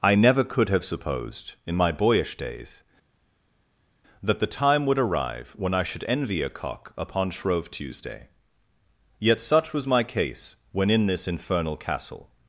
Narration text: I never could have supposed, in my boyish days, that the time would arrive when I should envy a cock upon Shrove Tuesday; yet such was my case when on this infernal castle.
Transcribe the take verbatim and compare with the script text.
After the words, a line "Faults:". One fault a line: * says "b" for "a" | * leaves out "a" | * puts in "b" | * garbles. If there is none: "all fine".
I never could have supposed, in my boyish days, that the time would arrive when I should envy a cock upon Shrove Tuesday; yet such was my case when in this infernal castle.
Faults:
* says "in" for "on"